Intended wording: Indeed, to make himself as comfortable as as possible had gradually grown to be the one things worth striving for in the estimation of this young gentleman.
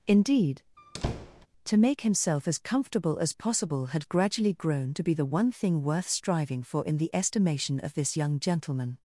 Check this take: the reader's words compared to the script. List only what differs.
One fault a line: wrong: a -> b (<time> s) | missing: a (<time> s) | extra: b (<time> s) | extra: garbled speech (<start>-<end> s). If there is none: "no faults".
missing: as (3.3 s)
wrong: things -> thing (5.5 s)